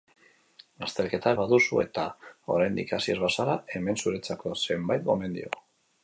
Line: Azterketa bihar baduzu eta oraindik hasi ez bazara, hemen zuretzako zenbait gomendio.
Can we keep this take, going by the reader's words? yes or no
no